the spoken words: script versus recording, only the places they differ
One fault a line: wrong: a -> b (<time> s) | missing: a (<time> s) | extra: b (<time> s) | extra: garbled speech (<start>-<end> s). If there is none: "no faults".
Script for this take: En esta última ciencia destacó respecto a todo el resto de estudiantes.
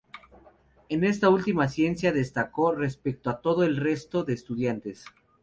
no faults